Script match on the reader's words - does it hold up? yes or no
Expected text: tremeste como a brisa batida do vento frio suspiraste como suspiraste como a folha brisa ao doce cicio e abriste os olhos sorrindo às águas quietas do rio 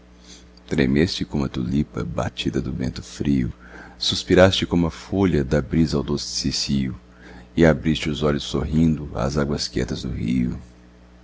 no